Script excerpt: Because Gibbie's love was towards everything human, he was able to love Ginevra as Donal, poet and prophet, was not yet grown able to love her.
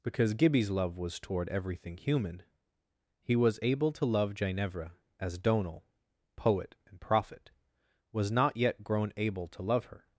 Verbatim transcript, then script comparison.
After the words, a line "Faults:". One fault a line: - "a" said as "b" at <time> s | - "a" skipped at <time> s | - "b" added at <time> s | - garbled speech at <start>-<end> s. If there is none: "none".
Because Gibbie's love was toward everything human, he was able to love Ginevra as Donal, poet and prophet, was not yet grown able to love her.
Faults:
- "towards" said as "toward" at 1.2 s